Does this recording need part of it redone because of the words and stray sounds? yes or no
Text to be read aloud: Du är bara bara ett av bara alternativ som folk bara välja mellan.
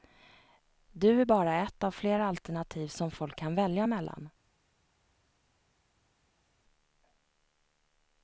yes